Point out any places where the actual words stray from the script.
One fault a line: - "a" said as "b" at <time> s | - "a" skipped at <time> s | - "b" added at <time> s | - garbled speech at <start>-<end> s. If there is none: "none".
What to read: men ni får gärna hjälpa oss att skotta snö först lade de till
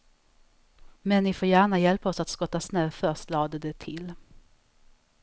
none